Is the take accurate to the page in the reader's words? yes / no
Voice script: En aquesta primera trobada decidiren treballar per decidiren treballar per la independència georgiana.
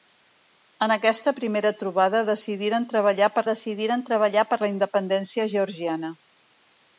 yes